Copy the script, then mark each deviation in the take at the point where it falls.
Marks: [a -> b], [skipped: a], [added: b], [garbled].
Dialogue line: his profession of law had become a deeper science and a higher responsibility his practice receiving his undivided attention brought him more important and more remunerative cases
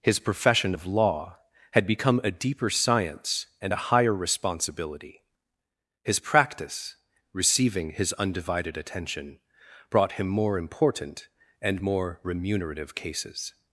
his profession of law had become a deeper science and a higher responsibility his practice receiving his undivided attention brought him more important and more remunerative cases